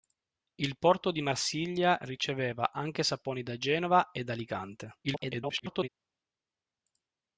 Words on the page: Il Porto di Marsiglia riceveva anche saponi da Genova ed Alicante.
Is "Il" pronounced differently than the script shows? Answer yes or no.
no